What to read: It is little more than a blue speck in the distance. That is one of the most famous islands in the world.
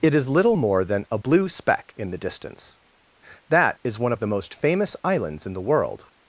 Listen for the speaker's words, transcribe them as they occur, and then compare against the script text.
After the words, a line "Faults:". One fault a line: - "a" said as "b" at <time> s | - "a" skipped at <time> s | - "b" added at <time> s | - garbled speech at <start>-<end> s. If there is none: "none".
It is little more than a blue speck in the distance. That is one of the most famous islands in the world.
Faults:
none